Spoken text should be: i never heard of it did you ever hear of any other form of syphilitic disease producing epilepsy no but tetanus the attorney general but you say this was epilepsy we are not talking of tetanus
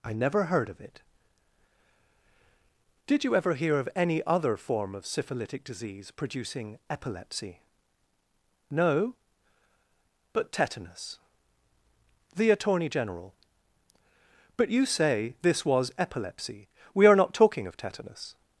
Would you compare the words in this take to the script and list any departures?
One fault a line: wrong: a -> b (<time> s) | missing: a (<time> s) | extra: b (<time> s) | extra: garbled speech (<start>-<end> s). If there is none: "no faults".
no faults